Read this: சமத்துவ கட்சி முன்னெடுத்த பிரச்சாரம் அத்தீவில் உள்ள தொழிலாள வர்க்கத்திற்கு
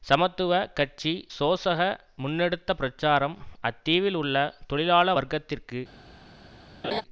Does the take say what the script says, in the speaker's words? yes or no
no